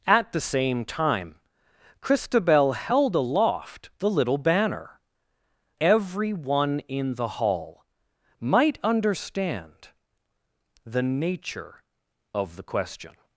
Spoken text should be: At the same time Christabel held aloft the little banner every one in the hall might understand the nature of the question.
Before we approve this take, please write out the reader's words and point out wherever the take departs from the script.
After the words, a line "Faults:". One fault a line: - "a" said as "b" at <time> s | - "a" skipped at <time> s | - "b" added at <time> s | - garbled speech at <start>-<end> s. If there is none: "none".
At the same time Christabel held aloft the little banner every one in the hall might understand the nature of the question.
Faults:
none